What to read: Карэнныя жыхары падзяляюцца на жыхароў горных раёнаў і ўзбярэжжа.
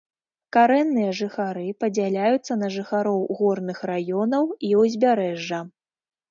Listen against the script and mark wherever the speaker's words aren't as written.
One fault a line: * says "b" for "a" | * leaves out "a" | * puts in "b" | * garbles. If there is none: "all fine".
all fine